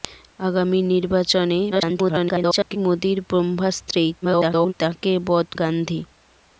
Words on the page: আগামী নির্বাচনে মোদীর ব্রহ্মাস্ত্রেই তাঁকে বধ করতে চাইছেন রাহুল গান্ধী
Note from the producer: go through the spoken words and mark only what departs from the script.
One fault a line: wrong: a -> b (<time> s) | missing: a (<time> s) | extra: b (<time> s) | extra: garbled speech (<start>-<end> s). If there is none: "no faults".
extra: garbled speech (1.7-2.8 s)
extra: garbled speech (4.2-4.7 s)
missing: করতে চাইছেন রাহুল (5.5 s)